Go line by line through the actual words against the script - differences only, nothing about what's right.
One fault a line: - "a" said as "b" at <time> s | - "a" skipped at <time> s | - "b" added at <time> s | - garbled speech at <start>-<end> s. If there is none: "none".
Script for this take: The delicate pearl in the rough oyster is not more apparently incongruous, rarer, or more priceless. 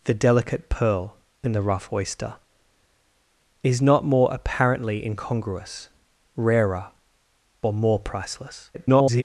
- garbled speech at 8.7-9.2 s